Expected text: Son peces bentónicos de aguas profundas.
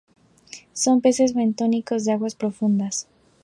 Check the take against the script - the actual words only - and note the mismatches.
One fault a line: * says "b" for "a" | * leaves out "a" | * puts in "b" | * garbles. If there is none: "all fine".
all fine